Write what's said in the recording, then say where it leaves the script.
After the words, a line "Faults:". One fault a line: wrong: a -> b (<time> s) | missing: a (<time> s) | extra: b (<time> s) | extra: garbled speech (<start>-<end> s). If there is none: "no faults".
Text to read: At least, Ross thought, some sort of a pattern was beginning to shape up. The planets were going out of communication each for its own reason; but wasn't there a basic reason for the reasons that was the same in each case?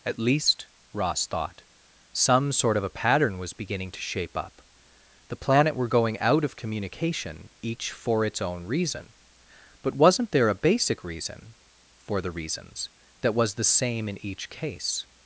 At least, Ross thought, some sort of a pattern was beginning to shape up. The planet were going out of communication each for its own reason; but wasn't there a basic reason for the reasons that was the same in each case?
Faults:
wrong: planets -> planet (5.3 s)